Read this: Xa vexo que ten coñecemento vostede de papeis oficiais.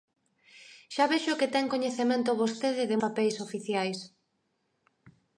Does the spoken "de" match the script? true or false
true